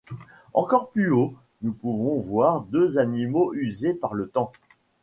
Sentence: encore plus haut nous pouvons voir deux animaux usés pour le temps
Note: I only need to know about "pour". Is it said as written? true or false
false